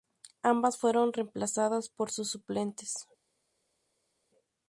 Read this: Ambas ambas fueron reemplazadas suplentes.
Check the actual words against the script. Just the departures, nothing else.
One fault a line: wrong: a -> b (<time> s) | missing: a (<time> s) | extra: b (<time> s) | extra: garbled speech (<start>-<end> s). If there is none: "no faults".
missing: ambas (0.8 s)
extra: por sus (1.9 s)